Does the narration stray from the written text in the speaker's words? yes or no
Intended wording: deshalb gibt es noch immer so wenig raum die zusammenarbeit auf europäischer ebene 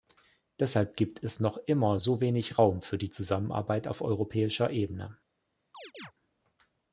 yes